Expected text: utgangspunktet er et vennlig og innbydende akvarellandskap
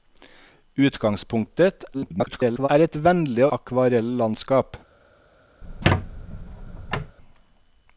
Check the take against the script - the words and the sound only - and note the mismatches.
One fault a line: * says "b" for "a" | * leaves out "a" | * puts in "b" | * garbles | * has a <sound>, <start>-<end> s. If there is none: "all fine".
* garbles
* leaves out "og innbydende"
* has a squeak, 5.6-7.2 s